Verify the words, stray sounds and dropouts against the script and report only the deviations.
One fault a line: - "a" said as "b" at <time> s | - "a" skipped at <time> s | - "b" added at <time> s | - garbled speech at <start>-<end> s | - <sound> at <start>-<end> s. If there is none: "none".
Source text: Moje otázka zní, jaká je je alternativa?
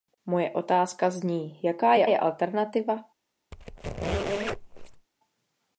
- squeak at 3.5-5.1 s